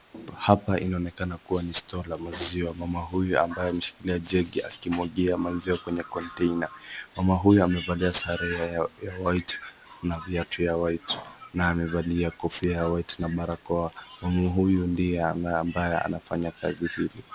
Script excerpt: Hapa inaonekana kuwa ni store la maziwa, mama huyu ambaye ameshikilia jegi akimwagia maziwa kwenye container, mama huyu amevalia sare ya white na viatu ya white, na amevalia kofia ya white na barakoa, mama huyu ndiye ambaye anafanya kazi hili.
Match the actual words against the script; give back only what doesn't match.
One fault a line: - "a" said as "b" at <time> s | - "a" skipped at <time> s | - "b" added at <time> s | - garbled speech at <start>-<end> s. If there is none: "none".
none